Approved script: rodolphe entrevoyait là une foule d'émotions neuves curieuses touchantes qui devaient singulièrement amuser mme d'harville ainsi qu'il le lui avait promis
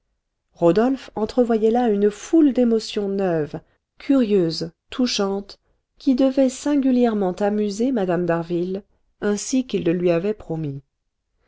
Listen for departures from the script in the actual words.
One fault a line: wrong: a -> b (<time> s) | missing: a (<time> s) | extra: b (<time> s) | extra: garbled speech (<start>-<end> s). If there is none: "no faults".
no faults